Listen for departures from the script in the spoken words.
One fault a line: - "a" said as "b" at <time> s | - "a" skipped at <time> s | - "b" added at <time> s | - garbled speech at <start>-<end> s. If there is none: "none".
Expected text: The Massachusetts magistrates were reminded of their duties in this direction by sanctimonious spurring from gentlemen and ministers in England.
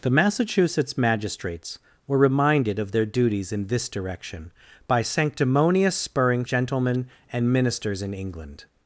- "from" skipped at 6.4 s